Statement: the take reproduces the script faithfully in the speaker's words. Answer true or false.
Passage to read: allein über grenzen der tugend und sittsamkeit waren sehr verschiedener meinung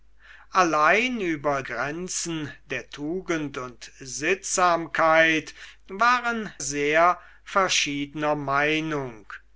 true